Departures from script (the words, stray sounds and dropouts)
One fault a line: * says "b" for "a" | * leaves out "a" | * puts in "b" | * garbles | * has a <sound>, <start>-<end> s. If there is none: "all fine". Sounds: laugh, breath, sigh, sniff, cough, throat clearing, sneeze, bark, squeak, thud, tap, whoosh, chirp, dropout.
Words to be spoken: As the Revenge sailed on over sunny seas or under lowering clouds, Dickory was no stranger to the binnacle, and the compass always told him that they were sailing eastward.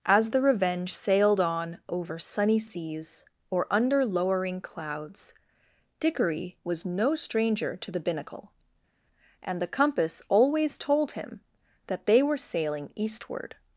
all fine